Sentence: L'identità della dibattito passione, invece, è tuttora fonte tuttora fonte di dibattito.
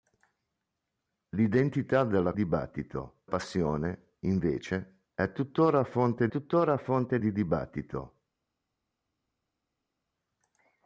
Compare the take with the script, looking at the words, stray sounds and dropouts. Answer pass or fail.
pass